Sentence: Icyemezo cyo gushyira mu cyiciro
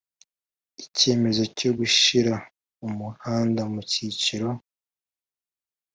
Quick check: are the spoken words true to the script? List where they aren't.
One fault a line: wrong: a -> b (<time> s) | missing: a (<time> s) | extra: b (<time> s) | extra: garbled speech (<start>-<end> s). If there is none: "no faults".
extra: umuhanda (2.9 s)